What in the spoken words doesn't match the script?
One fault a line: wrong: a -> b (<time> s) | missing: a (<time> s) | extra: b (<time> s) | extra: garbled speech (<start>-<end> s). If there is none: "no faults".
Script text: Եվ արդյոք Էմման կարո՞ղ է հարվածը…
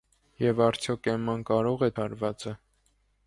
no faults